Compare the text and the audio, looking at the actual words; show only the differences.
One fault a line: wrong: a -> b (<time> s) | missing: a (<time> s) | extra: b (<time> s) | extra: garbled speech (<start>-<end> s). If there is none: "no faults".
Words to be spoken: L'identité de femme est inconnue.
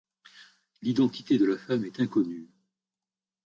extra: la (1.4 s)